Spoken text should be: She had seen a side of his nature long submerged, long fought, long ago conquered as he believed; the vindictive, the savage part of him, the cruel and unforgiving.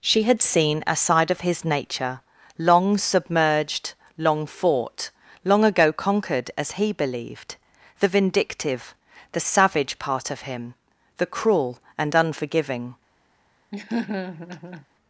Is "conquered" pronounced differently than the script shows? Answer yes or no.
no